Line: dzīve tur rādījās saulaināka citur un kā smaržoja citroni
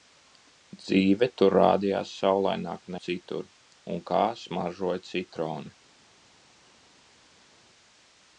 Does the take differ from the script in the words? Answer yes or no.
no